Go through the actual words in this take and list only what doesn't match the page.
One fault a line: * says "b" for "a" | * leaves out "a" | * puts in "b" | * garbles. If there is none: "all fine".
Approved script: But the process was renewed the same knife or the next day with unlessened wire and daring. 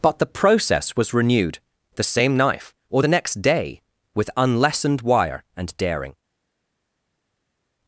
all fine